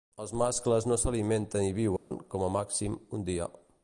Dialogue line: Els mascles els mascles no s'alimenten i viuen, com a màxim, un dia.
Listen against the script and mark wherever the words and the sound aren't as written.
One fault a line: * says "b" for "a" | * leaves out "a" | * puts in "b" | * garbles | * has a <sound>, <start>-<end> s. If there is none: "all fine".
* leaves out "els mascles"
* has a dropout, 2.0-2.1 s